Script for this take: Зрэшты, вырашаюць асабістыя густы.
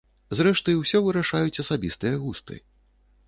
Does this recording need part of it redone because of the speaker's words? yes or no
yes